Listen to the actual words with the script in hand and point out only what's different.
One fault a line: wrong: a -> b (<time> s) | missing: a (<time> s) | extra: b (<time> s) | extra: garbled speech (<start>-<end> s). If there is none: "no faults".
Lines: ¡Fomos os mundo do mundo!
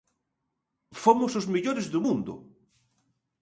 wrong: mundo -> mellores (1.5 s)